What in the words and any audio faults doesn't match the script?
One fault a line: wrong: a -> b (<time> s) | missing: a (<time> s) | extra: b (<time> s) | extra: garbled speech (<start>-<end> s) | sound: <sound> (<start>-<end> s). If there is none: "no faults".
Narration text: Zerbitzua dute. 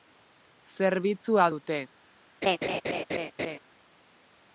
sound: laugh (2.4-3.6 s)